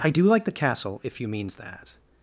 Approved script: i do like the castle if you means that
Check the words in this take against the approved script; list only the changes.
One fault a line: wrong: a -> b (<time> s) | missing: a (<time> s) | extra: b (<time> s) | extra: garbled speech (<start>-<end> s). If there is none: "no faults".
no faults